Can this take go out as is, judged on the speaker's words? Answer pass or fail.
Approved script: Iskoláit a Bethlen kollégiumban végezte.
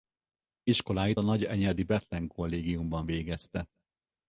fail